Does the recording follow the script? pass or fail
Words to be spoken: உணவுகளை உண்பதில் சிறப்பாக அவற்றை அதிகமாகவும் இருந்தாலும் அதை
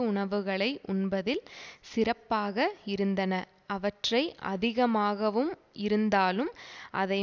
fail